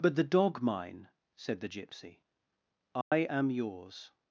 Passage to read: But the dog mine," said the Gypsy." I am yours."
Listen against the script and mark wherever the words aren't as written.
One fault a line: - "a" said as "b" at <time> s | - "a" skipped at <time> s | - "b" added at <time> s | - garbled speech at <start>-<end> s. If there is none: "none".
none